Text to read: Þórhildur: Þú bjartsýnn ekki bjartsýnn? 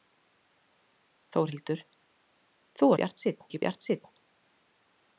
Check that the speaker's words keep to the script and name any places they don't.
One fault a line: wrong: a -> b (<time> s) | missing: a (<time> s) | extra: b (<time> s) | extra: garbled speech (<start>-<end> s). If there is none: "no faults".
no faults